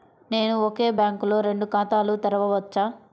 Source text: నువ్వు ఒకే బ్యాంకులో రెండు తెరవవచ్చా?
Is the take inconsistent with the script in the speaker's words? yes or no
yes